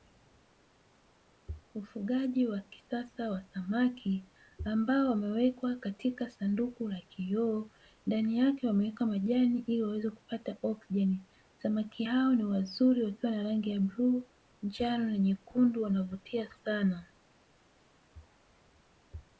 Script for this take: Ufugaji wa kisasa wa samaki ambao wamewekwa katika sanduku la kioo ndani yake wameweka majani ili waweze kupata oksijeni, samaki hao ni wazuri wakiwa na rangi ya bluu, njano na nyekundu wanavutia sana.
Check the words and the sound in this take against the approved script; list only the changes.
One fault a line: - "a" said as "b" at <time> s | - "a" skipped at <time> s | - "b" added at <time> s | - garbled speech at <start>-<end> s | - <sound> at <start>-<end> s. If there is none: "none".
none